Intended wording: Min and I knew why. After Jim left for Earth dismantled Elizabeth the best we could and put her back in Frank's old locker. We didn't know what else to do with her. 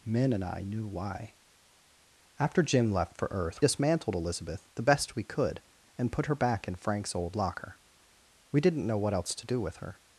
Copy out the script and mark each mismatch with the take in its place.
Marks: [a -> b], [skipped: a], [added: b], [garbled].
Min and I knew why. After Jim left for Earth dismantled Elizabeth the best we could and put her back in Frank's old locker. We didn't know what else to do with her.